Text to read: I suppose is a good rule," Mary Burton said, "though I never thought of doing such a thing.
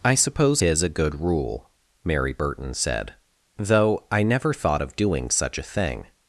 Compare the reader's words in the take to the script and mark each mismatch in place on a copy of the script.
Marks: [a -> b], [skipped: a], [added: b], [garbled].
I suppose is a good rule," Mary Burton said, "though I never thought of doing such a thing.